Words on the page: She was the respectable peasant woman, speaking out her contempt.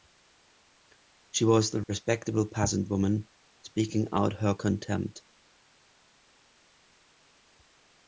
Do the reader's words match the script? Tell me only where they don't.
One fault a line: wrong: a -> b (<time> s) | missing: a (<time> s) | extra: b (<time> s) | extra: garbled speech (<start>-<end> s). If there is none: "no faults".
no faults